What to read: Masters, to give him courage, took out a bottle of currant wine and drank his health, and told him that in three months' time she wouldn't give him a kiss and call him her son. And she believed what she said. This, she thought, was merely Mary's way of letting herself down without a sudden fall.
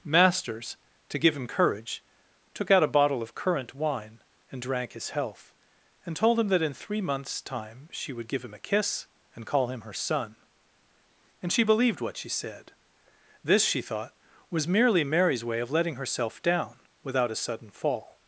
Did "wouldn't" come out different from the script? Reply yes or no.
yes